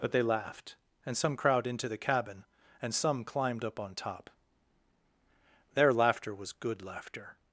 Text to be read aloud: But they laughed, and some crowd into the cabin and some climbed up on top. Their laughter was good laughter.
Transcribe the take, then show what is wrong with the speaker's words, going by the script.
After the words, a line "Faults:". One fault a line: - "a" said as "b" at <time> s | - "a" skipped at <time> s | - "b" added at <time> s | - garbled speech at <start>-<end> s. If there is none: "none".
But they laughed, and some crowd into the cabin and some climbed up on top. Their laughter was good laughter.
Faults:
none